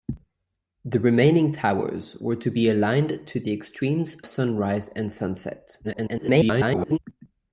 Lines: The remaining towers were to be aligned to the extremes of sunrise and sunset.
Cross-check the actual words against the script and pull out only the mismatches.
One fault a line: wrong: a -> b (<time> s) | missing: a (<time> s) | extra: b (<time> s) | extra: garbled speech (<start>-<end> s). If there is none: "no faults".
missing: of (4.2 s)
extra: garbled speech (5.8-7.0 s)